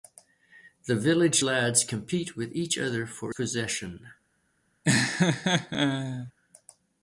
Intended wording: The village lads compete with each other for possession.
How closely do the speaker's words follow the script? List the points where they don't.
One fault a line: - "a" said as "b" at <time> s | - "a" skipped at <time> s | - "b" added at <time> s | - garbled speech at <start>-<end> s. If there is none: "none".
none